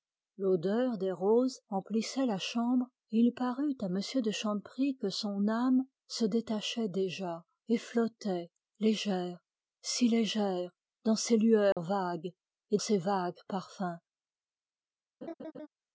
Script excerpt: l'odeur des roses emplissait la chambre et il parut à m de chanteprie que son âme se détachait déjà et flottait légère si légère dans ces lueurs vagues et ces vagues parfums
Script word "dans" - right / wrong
right